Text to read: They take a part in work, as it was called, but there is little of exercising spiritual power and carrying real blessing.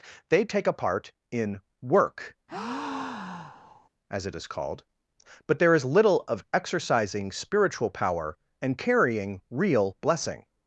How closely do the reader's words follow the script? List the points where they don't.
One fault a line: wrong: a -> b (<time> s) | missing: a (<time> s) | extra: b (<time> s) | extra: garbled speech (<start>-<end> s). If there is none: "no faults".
wrong: was -> is (4.4 s)